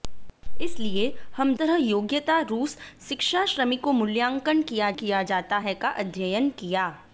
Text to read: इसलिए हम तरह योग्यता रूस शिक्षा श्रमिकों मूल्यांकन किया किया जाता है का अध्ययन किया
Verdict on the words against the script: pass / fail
pass